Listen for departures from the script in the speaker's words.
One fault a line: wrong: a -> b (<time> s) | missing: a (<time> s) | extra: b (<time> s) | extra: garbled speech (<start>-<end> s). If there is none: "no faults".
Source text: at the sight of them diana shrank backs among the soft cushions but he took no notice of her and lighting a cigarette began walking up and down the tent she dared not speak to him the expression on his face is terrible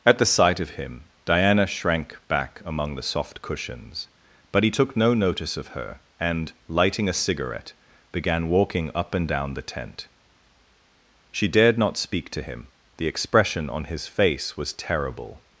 wrong: them -> him (0.7 s)
wrong: backs -> back (2.3 s)
wrong: is -> was (14.6 s)